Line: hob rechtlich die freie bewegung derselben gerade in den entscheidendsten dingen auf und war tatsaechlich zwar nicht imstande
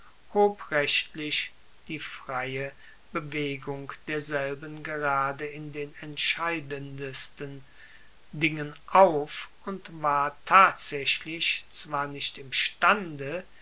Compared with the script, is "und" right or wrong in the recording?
right